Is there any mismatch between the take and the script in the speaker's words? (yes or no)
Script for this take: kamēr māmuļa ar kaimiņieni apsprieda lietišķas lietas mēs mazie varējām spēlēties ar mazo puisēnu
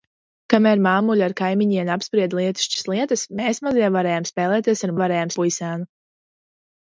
yes